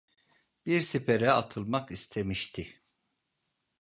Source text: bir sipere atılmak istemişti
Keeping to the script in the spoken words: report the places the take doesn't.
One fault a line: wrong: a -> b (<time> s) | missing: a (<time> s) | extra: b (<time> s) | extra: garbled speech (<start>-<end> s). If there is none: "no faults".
no faults